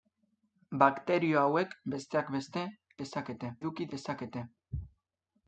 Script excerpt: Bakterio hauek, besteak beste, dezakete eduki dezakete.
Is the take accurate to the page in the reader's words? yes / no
yes